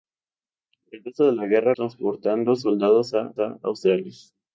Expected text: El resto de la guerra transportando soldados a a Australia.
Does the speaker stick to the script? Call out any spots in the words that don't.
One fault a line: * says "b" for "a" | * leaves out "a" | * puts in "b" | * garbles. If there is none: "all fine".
all fine